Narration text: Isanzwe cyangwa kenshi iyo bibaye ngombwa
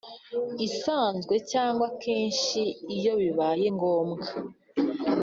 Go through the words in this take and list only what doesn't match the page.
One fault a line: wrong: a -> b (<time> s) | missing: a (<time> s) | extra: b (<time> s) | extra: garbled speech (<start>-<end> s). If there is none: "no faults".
no faults